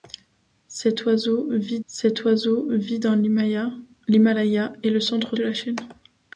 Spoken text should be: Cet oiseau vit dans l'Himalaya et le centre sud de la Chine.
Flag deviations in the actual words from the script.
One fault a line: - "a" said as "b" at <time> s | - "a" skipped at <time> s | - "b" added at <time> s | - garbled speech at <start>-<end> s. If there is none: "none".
- "cet oiseau vit" added at 1.9 s
- "sud" skipped at 5.4 s